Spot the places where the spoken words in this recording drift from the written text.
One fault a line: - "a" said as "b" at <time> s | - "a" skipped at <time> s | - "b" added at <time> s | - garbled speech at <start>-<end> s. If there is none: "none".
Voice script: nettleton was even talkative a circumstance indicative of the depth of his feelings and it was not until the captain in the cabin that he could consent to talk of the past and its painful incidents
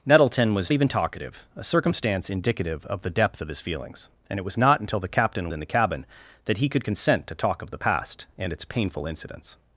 none